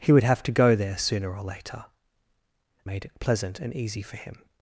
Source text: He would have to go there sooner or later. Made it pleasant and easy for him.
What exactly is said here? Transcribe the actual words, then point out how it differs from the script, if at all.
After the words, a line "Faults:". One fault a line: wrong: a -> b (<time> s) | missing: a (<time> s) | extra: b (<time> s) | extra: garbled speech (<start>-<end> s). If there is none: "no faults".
He would have to go there sooner or later. Made it pleasant and easy for him.
Faults:
no faults